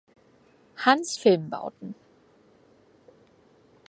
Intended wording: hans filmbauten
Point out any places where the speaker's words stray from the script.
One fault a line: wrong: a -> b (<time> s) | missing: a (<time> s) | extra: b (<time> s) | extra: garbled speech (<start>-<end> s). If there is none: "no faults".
no faults